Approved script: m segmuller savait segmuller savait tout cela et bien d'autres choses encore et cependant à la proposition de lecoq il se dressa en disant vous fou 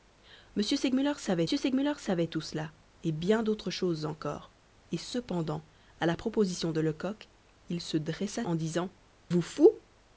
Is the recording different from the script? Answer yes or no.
no